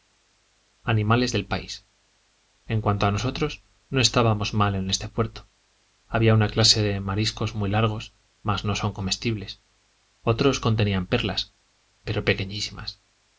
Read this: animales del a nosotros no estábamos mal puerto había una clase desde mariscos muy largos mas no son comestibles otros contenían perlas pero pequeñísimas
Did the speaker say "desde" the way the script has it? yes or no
no